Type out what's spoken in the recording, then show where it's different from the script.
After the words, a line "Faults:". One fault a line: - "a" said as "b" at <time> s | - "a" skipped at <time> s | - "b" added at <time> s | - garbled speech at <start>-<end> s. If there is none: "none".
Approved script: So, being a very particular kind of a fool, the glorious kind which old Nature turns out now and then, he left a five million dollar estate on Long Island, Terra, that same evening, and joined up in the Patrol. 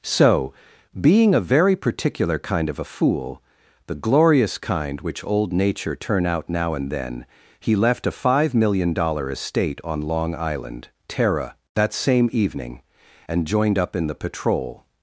So, being a very particular kind of a fool, the glorious kind which old Nature turn out now and then, he left a five million dollar estate on Long Island, Terra, that same evening, and joined up in the Patrol.
Faults:
- "turns" said as "turn" at 6.0 s